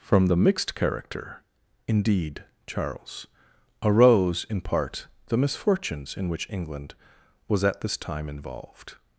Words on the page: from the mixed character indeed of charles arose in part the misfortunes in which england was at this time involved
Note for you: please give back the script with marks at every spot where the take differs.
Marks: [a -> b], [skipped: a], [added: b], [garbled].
from the mixed character indeed [skipped: of] charles arose in part the misfortunes in which england was at this time involved